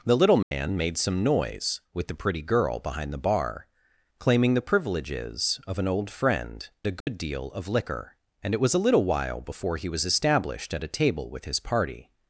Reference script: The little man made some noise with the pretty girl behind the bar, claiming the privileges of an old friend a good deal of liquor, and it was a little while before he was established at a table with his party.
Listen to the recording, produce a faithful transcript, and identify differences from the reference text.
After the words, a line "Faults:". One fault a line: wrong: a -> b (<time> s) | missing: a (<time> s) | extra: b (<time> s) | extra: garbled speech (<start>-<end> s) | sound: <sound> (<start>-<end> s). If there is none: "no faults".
The little man made some noise with the pretty girl behind the bar, claiming the privileges of an old friend a good deal of liquor, and it was a little while before he was established at a table with his party.
Faults:
sound: dropout (0.4-0.5 s)
sound: dropout (7.0-7.1 s)